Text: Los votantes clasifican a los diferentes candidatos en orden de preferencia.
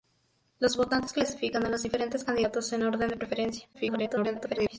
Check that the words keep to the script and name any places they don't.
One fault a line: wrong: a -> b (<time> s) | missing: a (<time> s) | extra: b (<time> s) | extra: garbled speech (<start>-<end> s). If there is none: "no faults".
extra: garbled speech (3.7-4.8 s)